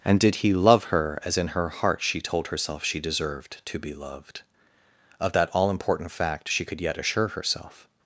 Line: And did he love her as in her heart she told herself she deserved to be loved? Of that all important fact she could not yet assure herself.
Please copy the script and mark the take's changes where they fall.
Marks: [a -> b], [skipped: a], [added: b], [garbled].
And did he love her as in her heart she told herself she deserved to be loved? Of that all important fact she could [skipped: not] yet assure herself.